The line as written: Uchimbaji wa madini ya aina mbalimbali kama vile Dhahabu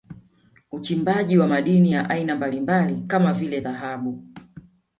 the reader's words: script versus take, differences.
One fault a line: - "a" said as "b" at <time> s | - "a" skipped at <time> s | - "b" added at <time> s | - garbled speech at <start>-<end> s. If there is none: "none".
none